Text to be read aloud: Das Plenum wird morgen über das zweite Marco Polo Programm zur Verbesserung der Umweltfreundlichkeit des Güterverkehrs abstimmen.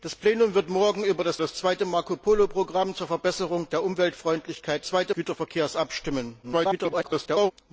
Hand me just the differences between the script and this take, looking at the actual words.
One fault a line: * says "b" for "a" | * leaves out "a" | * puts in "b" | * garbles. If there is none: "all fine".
* puts in "das"
* says "zweite" for "des"
* garbles